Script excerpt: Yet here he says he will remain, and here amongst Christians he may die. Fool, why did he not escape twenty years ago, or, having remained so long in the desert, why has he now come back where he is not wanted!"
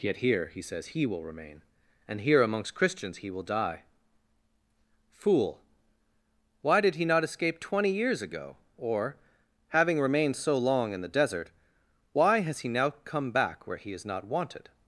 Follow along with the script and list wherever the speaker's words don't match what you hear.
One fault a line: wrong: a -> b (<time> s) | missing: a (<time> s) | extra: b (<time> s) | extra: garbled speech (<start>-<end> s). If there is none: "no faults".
wrong: may -> will (3.3 s)